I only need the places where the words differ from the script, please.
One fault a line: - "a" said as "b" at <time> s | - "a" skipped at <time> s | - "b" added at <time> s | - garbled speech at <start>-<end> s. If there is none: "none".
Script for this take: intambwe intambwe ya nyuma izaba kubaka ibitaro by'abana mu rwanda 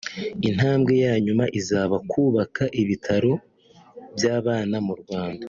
- "intambwe" skipped at 0.9 s